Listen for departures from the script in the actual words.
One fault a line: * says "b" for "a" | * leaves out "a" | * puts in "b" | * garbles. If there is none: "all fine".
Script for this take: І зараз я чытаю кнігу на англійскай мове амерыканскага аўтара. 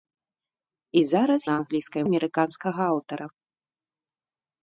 * leaves out "я чытаю кнігу"
* leaves out "мове"